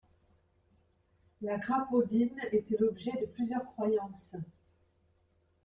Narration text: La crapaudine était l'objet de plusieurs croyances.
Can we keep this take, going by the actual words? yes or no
yes